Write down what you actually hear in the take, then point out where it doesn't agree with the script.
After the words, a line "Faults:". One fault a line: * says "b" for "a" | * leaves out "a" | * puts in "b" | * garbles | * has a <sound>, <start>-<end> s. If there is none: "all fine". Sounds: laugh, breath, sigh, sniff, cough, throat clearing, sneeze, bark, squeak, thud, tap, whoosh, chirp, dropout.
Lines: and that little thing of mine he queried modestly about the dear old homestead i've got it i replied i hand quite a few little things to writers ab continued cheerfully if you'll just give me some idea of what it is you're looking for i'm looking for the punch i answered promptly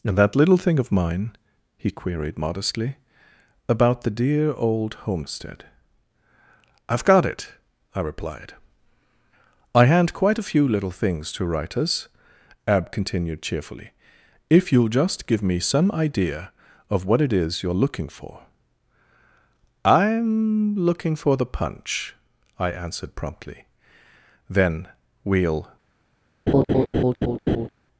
and that little thing of mine he queried modestly about the dear old homestead i've got it i replied i hand quite a few little things to writers ab continued cheerfully if you'll just give me some idea of what it is you're looking for i'm looking for the punch i answered promptly then we'll
Faults:
* puts in "then we'll"
* has a laugh, 26.5-27.7 s